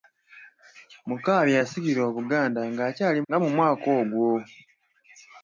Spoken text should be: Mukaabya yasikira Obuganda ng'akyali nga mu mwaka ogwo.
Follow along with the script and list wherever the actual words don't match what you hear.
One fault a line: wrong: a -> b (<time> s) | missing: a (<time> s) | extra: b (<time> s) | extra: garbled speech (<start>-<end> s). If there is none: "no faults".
no faults